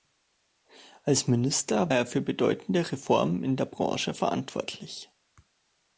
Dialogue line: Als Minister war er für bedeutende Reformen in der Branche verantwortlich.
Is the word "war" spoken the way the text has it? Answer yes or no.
no